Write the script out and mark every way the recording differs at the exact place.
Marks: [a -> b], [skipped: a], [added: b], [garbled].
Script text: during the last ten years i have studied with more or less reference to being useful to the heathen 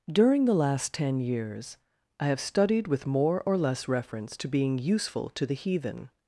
during the last ten years i have studied with more or less reference to being useful to the heathen